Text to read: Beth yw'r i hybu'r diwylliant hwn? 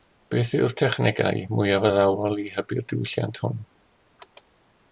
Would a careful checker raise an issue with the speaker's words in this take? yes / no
yes